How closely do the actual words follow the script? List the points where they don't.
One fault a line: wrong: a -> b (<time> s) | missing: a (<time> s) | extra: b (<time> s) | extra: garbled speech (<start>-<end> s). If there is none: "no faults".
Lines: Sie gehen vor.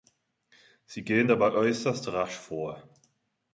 extra: dabei äußerst rasch (1.3 s)